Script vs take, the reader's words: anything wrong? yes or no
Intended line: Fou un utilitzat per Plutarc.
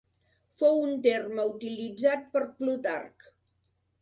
yes